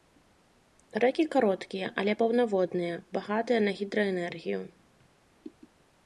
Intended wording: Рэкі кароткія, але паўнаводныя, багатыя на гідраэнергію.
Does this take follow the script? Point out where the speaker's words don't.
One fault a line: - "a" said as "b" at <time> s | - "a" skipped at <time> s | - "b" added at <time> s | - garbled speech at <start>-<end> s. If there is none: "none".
none